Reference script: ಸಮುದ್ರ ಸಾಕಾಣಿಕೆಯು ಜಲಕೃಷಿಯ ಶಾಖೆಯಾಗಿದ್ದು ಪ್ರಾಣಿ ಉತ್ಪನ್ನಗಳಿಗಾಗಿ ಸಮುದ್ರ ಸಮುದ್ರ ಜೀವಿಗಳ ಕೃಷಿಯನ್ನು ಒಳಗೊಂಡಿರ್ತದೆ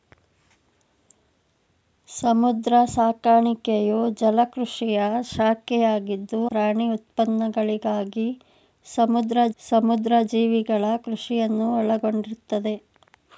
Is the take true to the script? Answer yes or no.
yes